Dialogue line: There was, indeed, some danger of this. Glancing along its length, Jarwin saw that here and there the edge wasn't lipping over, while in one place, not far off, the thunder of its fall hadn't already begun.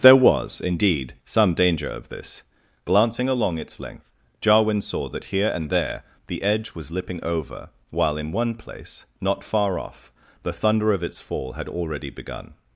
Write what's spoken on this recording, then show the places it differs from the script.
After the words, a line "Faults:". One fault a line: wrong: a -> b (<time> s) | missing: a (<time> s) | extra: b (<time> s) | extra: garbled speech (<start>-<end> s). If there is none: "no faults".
There was, indeed, some danger of this. Glancing along its length, Jarwin saw that here and there the edge was lipping over, while in one place, not far off, the thunder of its fall had already begun.
Faults:
wrong: wasn't -> was (6.7 s)
wrong: hadn't -> had (11.5 s)